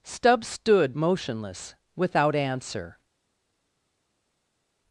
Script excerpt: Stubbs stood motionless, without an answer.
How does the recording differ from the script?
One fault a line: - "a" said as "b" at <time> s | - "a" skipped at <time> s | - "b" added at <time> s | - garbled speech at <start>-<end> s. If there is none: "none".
- "an" skipped at 2.3 s